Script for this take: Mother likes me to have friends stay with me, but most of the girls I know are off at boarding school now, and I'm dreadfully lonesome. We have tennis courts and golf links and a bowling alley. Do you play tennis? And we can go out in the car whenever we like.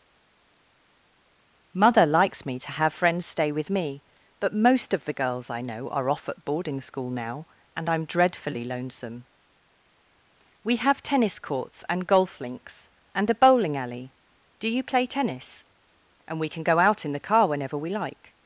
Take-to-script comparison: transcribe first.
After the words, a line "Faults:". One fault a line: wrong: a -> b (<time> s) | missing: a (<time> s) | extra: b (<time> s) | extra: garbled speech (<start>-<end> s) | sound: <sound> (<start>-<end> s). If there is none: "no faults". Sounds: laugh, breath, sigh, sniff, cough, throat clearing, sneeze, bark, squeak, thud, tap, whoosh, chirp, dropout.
Mother likes me to have friends stay with me, but most of the girls I know are off at boarding school now, and I'm dreadfully lonesome. We have tennis courts and golf links and a bowling alley. Do you play tennis? And we can go out in the car whenever we like.
Faults:
no faults